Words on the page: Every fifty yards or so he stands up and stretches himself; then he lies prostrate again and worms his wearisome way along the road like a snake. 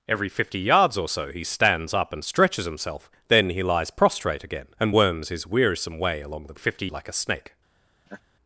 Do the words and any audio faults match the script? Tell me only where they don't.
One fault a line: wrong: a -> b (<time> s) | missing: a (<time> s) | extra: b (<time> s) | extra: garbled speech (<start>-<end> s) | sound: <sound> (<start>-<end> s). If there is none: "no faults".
wrong: road -> fifty (6.6 s)
sound: laugh (8.1-8.2 s)